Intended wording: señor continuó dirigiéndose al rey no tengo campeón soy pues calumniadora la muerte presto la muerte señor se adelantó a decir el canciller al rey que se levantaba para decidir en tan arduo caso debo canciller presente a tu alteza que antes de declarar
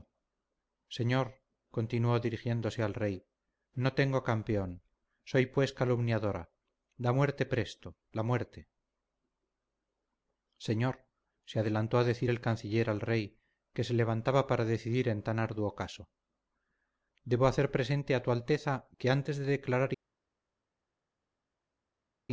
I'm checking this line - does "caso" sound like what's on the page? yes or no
yes